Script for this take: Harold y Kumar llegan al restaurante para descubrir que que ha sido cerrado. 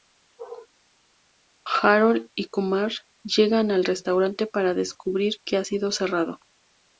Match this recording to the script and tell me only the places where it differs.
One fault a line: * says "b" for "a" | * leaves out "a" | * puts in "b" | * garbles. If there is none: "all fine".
* leaves out "que"